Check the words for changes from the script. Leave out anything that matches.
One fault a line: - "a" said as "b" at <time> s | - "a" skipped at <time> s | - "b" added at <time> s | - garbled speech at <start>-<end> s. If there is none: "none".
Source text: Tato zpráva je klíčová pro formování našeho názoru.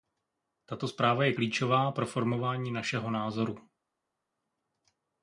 none